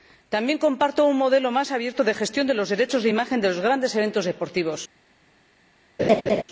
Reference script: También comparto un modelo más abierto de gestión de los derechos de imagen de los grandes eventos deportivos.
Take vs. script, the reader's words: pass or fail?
pass